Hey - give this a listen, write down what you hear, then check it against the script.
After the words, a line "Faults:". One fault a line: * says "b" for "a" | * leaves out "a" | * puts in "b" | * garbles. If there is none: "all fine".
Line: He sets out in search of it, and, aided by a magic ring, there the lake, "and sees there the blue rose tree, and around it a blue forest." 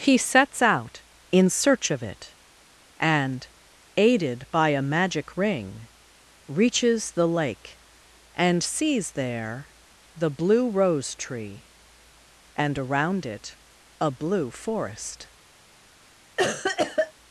He sets out in search of it, and, aided by a magic ring, reaches the lake, "and sees there the blue rose tree, and around it a blue forest."
Faults:
* says "reaches" for "there"